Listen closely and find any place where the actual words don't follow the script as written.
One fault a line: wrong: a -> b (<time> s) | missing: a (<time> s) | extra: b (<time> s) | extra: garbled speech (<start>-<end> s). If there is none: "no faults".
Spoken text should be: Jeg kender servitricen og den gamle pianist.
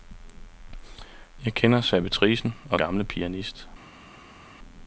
missing: den (2.8 s)